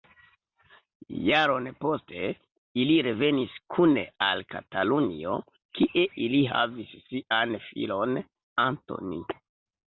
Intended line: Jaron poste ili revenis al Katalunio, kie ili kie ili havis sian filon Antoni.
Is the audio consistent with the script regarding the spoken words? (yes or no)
no